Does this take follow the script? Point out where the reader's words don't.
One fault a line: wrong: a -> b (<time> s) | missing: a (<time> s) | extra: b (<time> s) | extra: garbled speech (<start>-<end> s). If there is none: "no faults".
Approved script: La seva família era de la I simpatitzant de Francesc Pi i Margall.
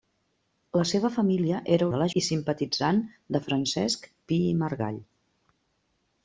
no faults